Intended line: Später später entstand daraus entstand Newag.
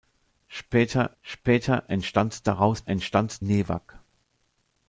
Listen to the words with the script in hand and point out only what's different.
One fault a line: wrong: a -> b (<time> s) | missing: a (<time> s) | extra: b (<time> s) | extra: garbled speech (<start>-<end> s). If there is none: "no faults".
no faults